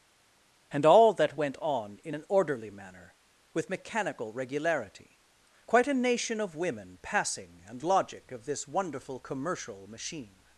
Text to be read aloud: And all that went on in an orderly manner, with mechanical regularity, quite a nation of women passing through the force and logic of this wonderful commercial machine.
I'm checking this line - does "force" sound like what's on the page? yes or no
no